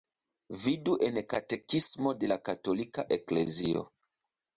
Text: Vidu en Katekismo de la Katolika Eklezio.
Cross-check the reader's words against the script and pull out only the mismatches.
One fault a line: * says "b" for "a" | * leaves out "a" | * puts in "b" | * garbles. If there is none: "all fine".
all fine